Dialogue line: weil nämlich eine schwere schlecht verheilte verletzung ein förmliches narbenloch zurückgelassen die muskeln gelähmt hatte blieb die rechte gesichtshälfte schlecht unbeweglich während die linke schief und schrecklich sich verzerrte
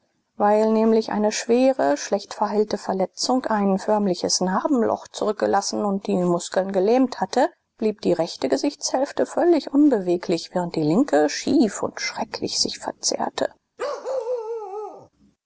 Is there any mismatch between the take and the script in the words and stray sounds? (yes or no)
yes